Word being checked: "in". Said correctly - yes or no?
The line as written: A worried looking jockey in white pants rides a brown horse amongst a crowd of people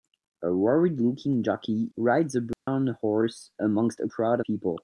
no